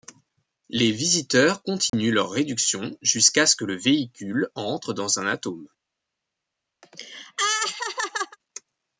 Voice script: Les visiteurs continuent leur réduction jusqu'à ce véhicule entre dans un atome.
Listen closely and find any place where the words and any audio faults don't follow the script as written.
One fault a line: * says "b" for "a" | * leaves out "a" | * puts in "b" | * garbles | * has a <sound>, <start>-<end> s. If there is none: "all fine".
* has a dropout, 1.9-1.9 s
* puts in "que le"
* has a laugh, 6.8-8.4 s